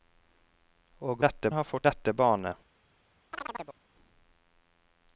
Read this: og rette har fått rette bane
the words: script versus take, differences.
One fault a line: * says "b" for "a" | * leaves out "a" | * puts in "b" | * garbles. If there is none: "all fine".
all fine